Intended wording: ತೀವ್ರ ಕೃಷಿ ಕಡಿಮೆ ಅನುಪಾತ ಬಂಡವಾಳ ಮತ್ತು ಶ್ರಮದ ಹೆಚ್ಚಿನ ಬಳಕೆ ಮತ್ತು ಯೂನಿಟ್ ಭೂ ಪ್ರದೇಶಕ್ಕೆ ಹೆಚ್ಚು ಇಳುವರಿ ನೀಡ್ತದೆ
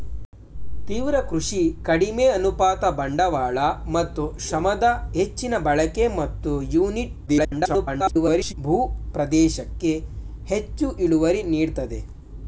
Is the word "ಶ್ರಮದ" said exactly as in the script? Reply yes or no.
yes